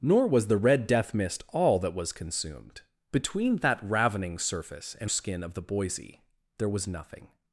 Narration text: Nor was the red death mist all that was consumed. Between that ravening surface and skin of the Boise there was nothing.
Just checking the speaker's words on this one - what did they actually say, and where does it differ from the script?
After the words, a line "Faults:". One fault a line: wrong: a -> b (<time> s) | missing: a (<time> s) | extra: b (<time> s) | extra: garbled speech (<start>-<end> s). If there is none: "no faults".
Nor was the red death mist all that was consumed. Between that ravening surface and skin of the Boise there was nothing.
Faults:
no faults